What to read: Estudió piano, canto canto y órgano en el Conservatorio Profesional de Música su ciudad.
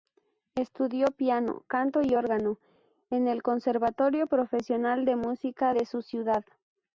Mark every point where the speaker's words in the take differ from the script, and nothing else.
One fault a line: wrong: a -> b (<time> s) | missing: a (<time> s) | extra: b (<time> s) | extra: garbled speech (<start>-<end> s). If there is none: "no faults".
missing: canto (2.0 s)
extra: de (5.7 s)